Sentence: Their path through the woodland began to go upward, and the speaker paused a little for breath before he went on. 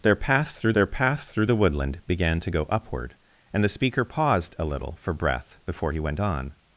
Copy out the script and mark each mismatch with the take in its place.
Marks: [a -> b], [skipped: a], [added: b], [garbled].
Their path through [added: their path through] the woodland began to go upward, and the speaker paused a little for breath before he went on.